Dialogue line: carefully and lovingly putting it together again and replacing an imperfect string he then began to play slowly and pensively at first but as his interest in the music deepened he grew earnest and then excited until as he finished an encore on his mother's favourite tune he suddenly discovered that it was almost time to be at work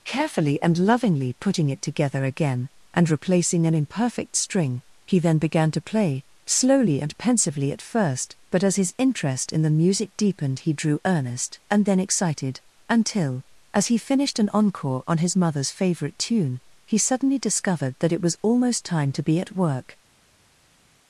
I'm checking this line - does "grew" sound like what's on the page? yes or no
no